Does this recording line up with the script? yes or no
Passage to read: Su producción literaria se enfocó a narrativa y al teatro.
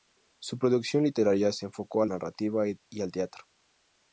yes